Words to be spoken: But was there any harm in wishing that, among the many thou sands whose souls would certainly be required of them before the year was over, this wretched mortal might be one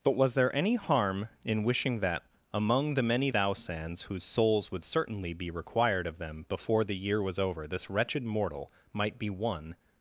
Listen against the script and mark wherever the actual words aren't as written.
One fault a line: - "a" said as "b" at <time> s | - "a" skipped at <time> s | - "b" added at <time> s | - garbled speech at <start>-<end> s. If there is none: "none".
none